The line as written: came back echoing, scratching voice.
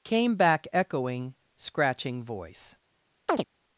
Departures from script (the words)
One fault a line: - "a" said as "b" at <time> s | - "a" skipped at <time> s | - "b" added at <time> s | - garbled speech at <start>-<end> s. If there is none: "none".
none